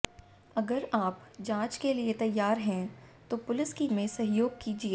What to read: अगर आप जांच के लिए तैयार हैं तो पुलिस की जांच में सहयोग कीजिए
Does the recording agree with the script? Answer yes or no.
no